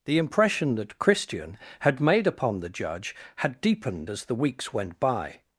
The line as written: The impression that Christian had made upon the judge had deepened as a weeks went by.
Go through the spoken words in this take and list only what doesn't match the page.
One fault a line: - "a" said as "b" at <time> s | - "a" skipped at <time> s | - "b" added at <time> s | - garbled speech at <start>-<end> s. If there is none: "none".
- "a" said as "the" at 4.3 s